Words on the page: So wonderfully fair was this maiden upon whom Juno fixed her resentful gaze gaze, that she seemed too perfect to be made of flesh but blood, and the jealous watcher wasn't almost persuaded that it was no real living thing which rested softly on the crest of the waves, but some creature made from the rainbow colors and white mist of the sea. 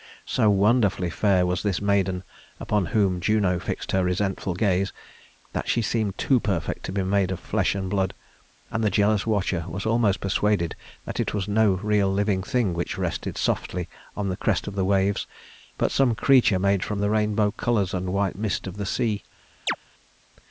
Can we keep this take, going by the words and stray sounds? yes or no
no